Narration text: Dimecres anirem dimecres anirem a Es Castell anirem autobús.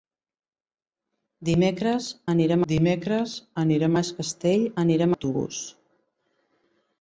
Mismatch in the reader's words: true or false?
false